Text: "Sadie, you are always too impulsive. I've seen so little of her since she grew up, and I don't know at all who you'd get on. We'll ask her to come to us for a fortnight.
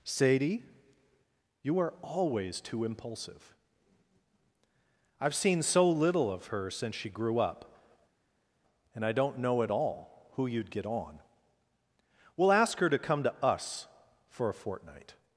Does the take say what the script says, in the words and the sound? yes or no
yes